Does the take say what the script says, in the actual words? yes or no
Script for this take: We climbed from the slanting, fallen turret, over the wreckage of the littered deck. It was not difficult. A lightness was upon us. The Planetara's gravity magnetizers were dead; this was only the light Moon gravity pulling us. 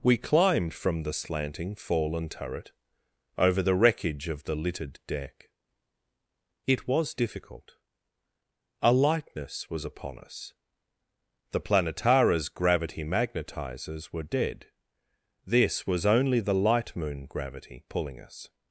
no